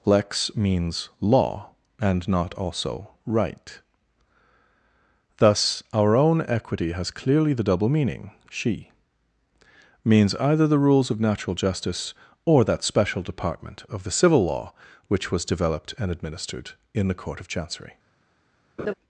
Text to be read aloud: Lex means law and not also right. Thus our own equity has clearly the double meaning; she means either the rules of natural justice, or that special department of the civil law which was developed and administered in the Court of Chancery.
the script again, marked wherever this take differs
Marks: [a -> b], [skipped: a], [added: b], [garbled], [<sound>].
Lex means law and not also right. Thus our own equity has clearly the double meaning; she means either the rules of natural justice, or that special department of the civil law which was developed and administered in the Court of Chancery. [laugh]